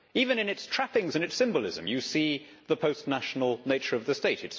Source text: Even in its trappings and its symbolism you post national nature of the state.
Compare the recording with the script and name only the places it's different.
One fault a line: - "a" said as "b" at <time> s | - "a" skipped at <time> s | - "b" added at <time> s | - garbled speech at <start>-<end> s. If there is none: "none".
- "see the" added at 2.0 s